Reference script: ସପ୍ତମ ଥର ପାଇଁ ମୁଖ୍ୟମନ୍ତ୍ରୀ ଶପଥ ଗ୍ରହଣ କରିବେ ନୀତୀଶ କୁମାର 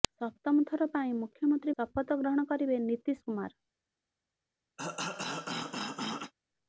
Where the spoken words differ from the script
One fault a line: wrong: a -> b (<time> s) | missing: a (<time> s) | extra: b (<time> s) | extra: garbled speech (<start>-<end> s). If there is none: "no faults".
no faults